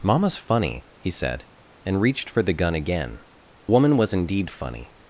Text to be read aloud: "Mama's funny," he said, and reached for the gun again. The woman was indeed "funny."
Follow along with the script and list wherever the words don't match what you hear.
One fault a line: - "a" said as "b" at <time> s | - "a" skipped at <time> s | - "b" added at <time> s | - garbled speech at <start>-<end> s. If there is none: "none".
- "The" skipped at 3.2 s